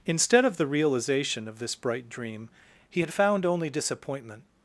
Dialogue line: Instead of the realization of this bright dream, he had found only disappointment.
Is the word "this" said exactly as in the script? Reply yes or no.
yes